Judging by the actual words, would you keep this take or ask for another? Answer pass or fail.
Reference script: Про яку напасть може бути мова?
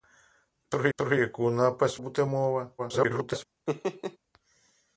fail